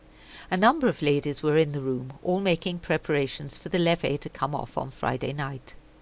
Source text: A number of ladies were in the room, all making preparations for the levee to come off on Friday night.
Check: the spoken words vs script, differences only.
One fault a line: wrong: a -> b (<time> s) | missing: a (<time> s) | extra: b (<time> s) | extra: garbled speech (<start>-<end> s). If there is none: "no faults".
no faults